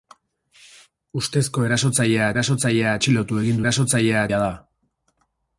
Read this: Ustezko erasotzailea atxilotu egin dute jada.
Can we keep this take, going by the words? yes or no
no